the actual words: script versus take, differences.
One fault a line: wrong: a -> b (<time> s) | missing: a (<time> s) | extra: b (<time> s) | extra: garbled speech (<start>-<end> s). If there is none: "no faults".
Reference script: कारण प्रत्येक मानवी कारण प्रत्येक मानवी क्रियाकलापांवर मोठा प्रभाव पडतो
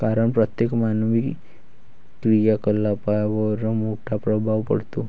missing: कारण प्रत्येक मानवी (1.2 s)